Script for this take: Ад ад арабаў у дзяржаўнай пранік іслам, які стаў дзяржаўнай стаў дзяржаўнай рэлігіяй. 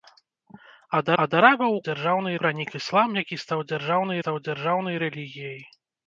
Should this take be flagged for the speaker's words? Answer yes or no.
no